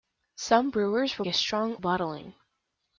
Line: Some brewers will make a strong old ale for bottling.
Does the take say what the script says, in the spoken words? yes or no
no